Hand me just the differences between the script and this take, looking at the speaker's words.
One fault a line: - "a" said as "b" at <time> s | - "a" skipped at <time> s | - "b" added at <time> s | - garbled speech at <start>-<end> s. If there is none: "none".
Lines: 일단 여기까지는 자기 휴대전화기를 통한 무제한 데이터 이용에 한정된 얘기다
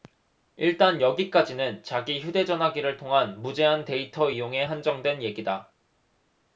none